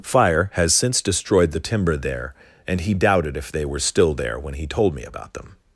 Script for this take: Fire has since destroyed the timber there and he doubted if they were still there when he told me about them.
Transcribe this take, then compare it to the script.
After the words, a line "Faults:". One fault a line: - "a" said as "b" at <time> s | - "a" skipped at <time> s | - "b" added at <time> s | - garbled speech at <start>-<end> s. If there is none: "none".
Fire has since destroyed the timber there and he doubted if they were still there when he told me about them.
Faults:
none